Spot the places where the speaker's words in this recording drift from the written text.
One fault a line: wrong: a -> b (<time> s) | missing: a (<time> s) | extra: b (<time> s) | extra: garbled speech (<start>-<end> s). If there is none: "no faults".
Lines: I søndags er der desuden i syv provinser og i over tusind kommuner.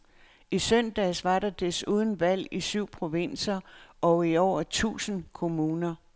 wrong: er -> var (1.2 s)
extra: valg (2.2 s)